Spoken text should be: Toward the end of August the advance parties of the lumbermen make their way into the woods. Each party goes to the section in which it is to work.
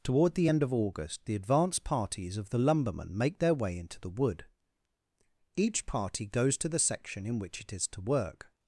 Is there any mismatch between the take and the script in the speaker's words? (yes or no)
yes